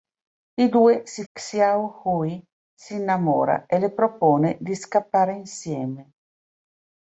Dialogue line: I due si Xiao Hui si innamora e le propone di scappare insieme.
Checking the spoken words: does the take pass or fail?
pass